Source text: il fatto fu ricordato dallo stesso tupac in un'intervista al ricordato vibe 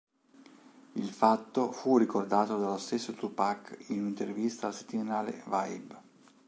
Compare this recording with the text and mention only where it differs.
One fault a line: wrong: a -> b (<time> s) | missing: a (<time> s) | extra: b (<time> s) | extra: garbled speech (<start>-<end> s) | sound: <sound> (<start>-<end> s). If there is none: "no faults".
wrong: ricordato -> settimanale (4.7 s)